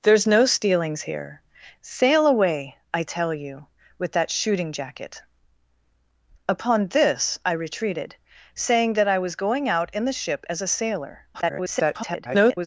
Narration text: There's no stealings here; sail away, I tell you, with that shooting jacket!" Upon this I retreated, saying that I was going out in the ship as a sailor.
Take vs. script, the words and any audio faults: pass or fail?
fail